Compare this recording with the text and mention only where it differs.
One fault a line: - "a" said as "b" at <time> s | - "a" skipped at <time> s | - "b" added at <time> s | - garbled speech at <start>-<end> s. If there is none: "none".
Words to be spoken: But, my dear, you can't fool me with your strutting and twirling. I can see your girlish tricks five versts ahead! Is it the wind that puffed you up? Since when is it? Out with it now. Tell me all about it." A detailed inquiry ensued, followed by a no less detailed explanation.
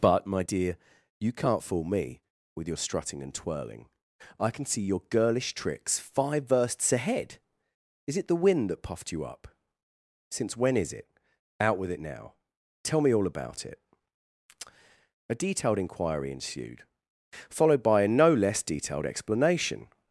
none